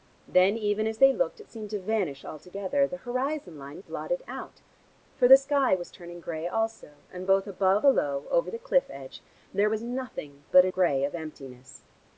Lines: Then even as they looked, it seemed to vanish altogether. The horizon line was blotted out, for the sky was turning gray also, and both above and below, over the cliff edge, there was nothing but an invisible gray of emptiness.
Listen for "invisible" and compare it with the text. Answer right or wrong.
wrong